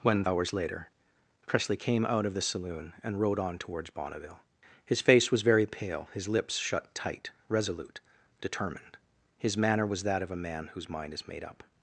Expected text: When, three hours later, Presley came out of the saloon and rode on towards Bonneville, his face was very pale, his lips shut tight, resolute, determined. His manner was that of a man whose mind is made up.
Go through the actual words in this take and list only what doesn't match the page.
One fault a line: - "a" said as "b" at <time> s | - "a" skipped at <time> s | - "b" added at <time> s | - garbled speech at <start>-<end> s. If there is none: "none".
- "three" skipped at 0.2 s